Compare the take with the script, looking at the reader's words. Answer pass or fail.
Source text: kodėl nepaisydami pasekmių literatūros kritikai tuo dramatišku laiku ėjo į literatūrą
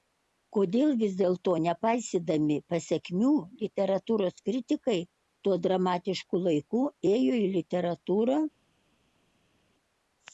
fail